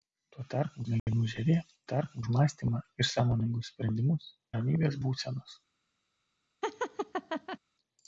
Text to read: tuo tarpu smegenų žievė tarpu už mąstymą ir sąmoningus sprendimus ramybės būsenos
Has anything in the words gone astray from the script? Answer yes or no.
no